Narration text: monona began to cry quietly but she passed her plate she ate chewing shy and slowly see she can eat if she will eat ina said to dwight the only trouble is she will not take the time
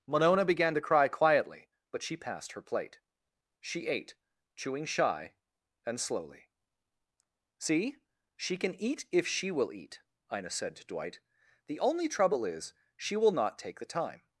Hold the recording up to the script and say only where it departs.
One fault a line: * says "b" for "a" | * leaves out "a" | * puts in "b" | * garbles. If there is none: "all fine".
all fine